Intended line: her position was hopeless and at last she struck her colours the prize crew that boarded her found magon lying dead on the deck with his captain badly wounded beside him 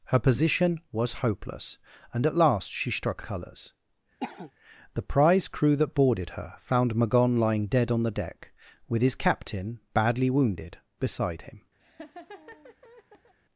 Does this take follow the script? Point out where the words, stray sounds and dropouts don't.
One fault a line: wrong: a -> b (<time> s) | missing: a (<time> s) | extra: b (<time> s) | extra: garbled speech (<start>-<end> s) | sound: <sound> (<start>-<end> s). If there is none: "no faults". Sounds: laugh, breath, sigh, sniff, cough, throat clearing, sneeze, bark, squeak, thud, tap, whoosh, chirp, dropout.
missing: her (3.2 s)
sound: cough (4.2-4.5 s)
sound: laugh (11.8-13.3 s)